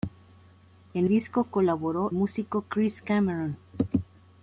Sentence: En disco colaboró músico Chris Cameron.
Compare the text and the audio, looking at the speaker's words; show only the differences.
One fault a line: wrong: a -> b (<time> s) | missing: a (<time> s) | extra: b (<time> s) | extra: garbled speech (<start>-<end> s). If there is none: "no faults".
no faults